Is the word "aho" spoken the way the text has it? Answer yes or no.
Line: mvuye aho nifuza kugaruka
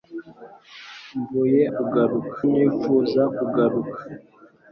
no